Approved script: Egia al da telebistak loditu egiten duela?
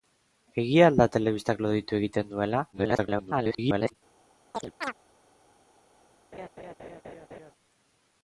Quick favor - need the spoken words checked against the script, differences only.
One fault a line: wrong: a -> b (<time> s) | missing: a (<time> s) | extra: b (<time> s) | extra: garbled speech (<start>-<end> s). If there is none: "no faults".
extra: garbled speech (2.7-3.9 s)